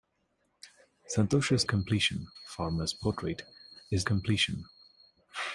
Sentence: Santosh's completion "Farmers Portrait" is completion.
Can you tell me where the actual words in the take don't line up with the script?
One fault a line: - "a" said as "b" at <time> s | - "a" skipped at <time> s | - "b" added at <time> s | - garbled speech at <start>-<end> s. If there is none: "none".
none